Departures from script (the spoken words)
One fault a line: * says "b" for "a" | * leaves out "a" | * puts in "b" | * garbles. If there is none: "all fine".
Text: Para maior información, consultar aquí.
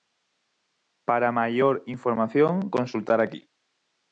all fine